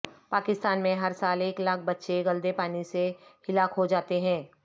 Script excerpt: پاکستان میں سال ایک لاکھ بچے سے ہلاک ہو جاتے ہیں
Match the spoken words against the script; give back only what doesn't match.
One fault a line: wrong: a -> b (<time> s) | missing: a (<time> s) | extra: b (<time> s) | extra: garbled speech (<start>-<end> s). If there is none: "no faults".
extra: ہر (0.9 s)
extra: گلدے پانی (2.2 s)